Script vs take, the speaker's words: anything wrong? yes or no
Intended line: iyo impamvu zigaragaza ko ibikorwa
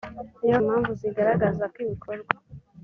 no